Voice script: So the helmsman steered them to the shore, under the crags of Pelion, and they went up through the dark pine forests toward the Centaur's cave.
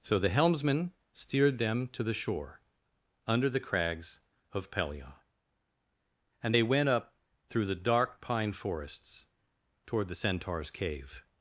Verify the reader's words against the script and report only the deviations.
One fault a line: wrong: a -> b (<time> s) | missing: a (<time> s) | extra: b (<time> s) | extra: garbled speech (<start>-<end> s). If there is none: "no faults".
no faults